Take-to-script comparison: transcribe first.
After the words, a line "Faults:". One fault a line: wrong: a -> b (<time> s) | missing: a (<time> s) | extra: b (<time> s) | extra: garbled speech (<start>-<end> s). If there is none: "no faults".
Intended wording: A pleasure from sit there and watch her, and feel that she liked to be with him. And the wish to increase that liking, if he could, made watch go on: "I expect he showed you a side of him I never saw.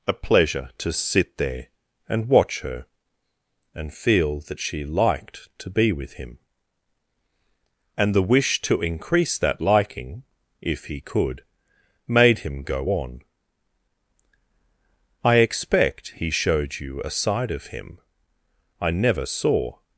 A pleasure to sit there and watch her, and feel that she liked to be with him. And the wish to increase that liking, if he could, made him go on: "I expect he showed you a side of him I never saw.
Faults:
wrong: from -> to (0.8 s)
wrong: watch -> him (12.4 s)